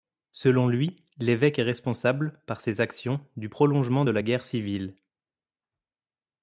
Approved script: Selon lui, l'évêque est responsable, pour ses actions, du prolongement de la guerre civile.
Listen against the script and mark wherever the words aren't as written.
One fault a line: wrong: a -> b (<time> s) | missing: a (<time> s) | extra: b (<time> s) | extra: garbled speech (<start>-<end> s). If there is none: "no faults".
wrong: pour -> par (2.5 s)